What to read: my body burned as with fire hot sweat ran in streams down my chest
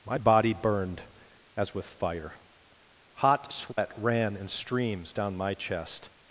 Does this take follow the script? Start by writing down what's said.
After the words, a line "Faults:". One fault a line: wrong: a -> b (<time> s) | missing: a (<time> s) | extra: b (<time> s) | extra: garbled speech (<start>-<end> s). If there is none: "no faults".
my body burned as with fire hot sweat ran in streams down my chest
Faults:
no faults